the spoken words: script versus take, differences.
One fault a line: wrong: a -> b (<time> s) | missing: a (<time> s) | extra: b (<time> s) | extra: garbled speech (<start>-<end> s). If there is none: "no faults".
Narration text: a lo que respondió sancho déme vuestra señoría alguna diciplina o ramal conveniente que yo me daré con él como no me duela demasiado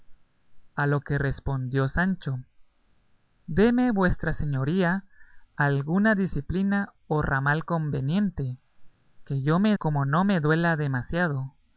missing: daré con él (9.8 s)